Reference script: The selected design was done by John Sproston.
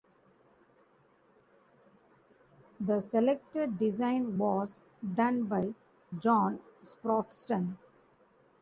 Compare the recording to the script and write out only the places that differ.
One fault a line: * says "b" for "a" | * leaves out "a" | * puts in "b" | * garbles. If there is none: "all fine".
all fine